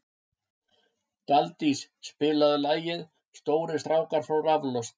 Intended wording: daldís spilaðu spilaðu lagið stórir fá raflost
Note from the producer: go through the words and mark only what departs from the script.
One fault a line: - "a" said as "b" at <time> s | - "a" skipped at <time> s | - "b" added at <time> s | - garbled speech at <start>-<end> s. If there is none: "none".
- "spilaðu" skipped at 2.6 s
- "strákar" added at 3.8 s